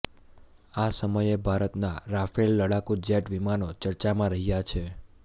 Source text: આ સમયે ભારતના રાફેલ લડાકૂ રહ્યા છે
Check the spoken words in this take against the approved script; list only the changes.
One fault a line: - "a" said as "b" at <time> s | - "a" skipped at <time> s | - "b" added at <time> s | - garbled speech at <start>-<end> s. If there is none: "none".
- "જેટ વિમાનો ચર્ચામાં" added at 3.0 s